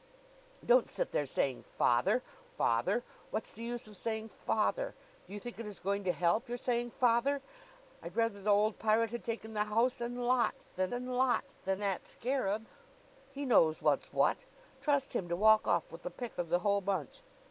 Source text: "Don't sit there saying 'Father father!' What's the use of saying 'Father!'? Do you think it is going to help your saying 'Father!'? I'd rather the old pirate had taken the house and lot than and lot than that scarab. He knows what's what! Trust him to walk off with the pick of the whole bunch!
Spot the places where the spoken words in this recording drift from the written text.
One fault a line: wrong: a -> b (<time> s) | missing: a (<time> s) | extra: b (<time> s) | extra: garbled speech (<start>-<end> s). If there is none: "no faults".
no faults